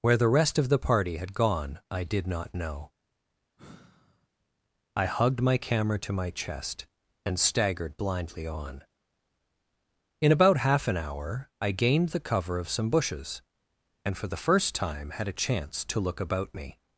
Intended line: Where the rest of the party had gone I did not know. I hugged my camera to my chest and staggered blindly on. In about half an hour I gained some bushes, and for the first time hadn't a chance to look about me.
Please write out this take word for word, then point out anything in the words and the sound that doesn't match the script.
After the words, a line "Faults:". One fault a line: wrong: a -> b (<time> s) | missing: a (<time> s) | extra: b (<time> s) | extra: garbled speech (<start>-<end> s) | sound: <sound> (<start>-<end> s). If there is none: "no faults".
Where the rest of the party had gone I did not know. I hugged my camera to my chest and staggered blindly on. In about half an hour I gained the cover of some bushes, and for the first time had a chance to look about me.
Faults:
sound: sigh (3.6-4.3 s)
extra: the cover of (12.1 s)
wrong: hadn't -> had (15.1 s)